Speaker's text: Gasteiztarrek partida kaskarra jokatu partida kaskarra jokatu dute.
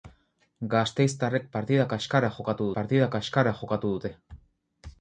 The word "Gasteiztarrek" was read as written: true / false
true